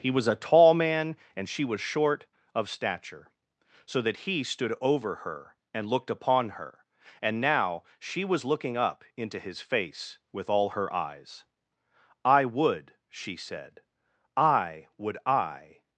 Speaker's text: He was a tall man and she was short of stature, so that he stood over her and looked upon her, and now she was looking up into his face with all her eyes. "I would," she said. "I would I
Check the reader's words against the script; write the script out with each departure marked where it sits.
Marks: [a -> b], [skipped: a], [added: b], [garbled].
He was a tall man and she was short of stature, so that he stood over her and looked upon her, and now she was looking up into his face with all her eyes. "I would," she said. "I would I